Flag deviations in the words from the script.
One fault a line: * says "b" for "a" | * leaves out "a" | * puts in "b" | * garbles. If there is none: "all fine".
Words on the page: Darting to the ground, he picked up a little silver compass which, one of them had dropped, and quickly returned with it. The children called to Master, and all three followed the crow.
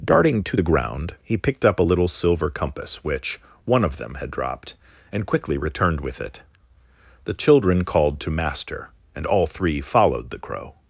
all fine